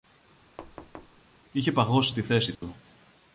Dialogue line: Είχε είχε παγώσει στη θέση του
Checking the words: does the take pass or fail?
fail